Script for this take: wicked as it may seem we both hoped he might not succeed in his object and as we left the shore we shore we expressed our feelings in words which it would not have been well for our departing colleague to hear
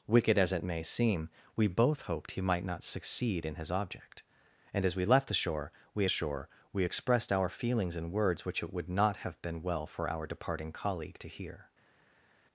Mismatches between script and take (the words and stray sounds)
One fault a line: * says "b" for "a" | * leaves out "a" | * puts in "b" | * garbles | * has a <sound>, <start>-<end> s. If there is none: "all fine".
all fine